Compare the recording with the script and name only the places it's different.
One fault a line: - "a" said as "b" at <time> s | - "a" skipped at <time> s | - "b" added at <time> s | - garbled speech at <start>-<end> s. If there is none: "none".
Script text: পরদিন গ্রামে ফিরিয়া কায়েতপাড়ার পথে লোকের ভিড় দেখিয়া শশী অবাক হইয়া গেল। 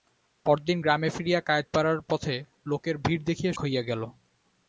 - "শশী অবাক" skipped at 3.5 s